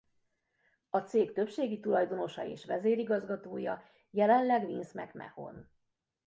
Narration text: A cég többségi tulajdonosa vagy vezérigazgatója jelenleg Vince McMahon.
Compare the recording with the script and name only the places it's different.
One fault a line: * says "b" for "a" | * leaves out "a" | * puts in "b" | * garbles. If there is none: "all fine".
* says "és" for "vagy"